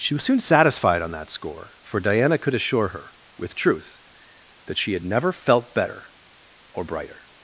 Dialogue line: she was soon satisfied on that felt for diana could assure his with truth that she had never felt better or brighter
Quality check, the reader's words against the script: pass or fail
fail